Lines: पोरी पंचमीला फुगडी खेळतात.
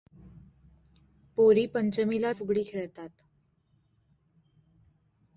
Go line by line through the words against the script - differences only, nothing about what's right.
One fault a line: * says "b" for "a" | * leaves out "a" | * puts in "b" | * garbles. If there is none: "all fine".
all fine